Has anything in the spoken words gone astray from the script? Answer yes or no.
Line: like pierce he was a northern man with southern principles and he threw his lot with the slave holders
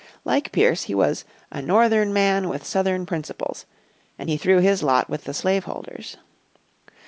no